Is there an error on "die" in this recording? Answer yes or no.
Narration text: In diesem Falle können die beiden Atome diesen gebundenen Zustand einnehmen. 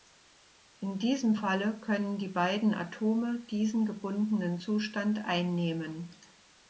no